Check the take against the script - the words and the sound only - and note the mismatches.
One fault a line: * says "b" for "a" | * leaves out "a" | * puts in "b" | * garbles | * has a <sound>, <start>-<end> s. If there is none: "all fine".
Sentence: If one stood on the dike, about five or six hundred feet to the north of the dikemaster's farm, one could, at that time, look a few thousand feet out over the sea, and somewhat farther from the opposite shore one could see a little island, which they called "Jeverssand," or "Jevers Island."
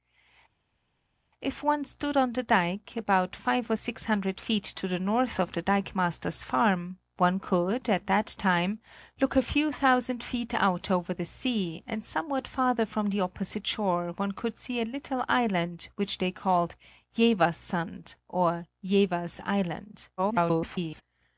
* garbles